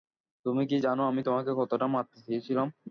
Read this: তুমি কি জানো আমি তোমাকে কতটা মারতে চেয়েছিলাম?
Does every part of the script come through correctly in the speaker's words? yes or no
yes